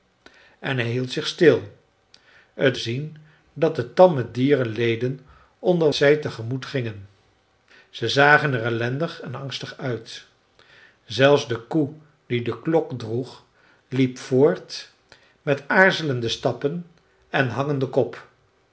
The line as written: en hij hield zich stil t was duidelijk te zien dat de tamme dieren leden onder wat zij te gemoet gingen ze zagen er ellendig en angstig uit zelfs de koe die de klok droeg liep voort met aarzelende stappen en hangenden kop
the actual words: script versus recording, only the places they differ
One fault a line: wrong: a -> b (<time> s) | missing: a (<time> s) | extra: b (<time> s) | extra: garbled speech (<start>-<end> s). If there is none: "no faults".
missing: was duidelijk te (2.8 s)
missing: wat (5.9 s)